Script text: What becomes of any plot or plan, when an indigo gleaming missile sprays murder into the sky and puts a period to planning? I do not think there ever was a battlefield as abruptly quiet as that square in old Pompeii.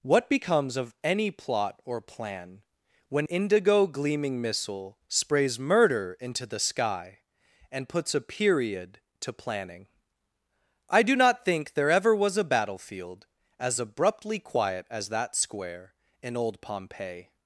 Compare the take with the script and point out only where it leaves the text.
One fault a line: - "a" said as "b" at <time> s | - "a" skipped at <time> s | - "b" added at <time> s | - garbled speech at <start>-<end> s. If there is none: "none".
- "an" skipped at 3.3 s